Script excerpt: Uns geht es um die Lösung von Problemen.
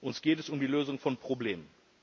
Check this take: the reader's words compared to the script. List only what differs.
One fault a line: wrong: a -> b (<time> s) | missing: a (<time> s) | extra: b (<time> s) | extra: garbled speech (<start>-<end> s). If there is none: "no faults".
no faults